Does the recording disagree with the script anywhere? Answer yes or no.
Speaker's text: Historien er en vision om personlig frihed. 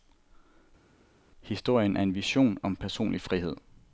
no